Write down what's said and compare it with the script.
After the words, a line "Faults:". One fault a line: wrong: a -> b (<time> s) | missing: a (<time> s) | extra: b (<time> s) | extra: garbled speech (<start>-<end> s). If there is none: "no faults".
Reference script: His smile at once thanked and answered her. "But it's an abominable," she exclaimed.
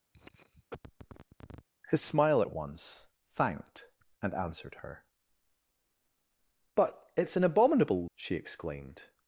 His smile at once thanked and answered her. "But it's an abominable," she exclaimed.
Faults:
no faults